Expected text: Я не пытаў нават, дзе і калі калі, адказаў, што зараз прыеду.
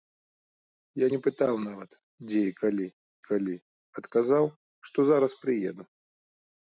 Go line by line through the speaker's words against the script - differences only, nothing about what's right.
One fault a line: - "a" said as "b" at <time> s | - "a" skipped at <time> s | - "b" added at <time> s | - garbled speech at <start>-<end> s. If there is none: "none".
none